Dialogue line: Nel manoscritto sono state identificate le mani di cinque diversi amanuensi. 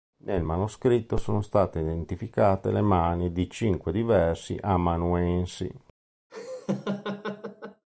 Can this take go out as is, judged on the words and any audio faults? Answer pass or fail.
fail